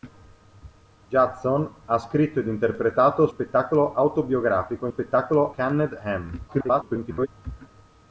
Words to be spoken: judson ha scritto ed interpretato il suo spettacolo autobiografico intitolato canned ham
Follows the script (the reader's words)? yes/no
no